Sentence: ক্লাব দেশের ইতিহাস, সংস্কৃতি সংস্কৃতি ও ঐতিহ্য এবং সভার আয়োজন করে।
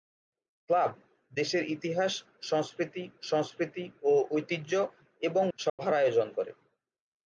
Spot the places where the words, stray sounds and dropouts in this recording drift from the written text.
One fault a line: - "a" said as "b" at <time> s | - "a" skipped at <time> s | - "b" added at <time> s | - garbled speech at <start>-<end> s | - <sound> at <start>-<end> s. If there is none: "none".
- dropout at 5.7-5.8 s